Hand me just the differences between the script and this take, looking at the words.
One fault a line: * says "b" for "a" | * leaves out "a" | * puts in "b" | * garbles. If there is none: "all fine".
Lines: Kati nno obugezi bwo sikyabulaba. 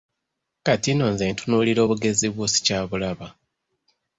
* puts in "nze ntunuulira"